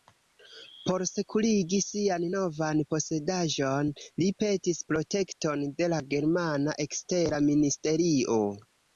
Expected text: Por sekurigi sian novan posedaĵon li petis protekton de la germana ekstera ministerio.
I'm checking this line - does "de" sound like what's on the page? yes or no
yes